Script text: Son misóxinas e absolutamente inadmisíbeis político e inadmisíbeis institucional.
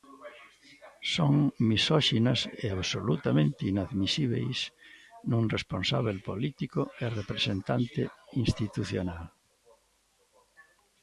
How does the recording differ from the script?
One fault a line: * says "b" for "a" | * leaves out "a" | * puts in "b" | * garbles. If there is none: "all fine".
* puts in "nun responsábel"
* says "representante" for "inadmisíbeis"